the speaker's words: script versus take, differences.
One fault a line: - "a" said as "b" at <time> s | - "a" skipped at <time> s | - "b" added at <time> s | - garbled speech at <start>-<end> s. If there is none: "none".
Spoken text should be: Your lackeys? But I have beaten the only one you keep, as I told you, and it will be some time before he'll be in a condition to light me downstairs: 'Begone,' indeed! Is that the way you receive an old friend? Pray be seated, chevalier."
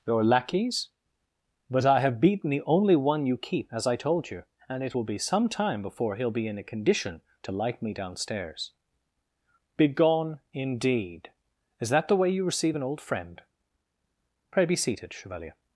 none